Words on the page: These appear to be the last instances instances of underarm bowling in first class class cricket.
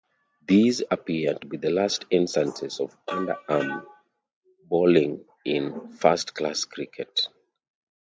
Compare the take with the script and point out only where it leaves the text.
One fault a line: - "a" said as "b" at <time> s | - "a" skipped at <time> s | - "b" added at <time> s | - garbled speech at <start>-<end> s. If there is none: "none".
- "instances" skipped at 2.8 s
- "class" skipped at 6.7 s